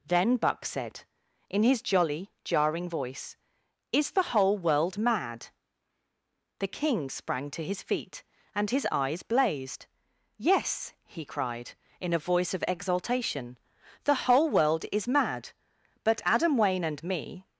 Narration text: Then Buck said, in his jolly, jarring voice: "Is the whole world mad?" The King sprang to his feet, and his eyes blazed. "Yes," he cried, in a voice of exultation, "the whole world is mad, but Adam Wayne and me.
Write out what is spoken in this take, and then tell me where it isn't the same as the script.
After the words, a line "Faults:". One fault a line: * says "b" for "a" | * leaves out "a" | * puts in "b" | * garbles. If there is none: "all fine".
Then Buck said, in his jolly, jarring voice: "Is the whole world mad?" The King sprang to his feet, and his eyes blazed. "Yes," he cried, in a voice of exultation, "the whole world is mad, but Adam Wayne and me.
Faults:
all fine